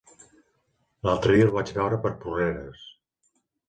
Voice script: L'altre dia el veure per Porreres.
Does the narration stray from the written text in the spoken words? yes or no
yes